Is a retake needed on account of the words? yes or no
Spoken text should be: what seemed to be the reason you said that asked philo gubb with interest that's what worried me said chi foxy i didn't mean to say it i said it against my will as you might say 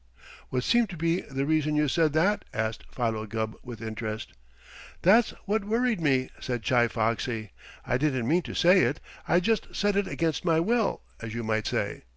yes